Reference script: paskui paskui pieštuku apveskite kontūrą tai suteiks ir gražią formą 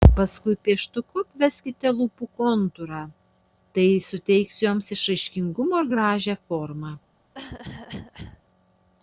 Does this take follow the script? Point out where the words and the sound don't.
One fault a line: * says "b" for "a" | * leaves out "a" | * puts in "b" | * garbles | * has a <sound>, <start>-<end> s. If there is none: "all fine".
* leaves out "paskui"
* puts in "lūpų"
* puts in "joms išraiškingumo"
* has a cough, 7.3-8.4 s